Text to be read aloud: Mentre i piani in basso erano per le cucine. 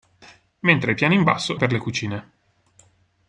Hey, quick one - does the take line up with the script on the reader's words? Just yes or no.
no